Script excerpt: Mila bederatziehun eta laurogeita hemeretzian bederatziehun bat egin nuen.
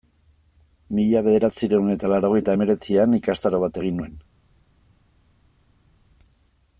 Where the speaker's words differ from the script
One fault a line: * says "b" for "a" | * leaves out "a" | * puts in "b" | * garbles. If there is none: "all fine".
* says "ikastaro" for "bederatziehun"